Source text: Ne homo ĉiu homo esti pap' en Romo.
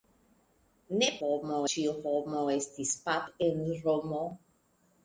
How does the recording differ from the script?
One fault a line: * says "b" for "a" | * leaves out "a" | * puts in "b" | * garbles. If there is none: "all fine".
all fine